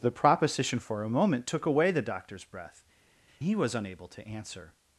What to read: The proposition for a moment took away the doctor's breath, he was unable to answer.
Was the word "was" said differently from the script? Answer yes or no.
no